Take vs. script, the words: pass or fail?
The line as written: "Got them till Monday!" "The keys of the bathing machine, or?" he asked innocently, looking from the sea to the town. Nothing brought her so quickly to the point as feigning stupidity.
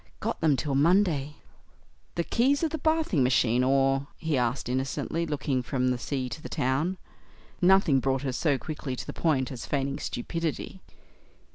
pass